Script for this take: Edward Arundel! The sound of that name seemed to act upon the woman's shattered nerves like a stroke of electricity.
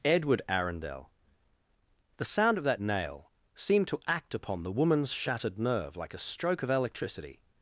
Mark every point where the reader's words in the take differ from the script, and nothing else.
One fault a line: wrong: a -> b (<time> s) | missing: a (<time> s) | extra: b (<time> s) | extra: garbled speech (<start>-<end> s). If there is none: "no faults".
wrong: name -> nail (2.8 s)
wrong: nerves -> nerve (5.6 s)